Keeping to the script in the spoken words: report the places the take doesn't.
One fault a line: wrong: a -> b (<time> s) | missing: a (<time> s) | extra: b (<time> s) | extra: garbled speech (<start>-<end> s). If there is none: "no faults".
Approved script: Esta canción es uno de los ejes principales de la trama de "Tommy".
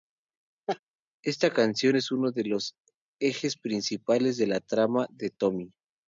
no faults